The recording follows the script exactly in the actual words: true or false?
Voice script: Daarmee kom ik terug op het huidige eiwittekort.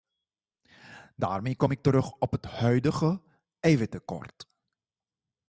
true